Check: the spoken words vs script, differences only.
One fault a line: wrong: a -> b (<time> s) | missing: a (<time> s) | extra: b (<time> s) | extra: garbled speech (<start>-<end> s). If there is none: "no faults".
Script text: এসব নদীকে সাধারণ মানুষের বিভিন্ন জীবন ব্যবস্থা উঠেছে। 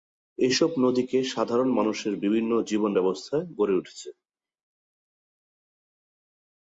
extra: গড়ে (3.6 s)